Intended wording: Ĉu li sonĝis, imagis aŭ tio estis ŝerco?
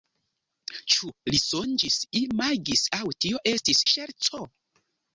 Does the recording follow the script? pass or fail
pass